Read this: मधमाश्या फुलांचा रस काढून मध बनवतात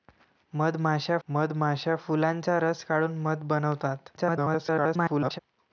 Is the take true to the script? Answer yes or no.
no